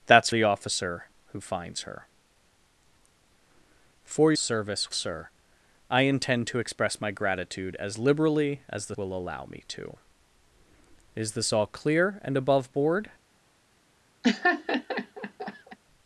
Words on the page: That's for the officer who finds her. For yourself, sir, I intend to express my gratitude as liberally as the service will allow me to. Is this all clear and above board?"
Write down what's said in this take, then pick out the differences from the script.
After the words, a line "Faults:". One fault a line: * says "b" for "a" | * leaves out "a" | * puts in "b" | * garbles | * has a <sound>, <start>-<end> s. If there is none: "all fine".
That's the officer who finds her. For service, sir, I intend to express my gratitude as liberally as the will allow me to. Is this all clear and above board?"
Faults:
* leaves out "for"
* says "service" for "yourself"
* leaves out "service"
* has a laugh, 14.2-15.8 s